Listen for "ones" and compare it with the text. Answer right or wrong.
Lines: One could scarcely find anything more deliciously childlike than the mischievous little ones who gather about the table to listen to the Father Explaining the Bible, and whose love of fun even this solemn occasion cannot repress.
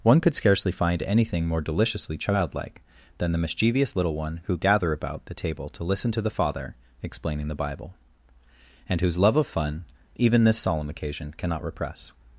wrong